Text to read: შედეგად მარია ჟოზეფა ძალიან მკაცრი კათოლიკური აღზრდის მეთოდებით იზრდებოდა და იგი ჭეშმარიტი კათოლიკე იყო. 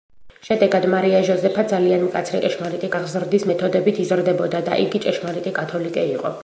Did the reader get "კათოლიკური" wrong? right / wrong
wrong